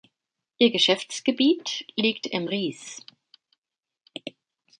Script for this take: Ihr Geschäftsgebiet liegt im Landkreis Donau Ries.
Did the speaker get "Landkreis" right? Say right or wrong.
wrong